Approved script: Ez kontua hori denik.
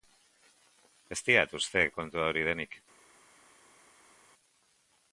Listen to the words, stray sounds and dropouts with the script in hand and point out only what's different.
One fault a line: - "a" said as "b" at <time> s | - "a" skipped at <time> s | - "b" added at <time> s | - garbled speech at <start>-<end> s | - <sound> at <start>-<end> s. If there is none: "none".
- "diat uste" added at 1.3 s